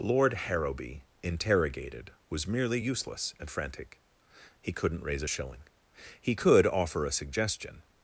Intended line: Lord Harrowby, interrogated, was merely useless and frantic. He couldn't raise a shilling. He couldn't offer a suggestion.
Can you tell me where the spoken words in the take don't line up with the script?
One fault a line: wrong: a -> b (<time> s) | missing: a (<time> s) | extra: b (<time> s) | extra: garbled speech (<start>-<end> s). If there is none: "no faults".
wrong: couldn't -> could (6.3 s)